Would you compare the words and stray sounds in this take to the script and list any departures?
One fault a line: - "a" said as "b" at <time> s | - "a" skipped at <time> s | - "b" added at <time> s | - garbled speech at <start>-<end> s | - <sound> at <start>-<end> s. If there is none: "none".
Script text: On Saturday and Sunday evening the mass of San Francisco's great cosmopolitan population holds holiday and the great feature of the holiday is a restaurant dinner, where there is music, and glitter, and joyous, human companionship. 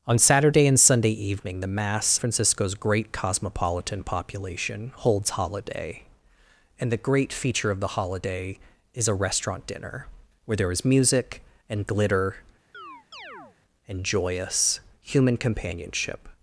- "of San" skipped at 2.2 s
- chirp at 12.7-13.6 s